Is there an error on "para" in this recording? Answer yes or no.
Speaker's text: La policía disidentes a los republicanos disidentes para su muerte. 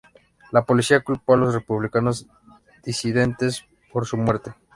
yes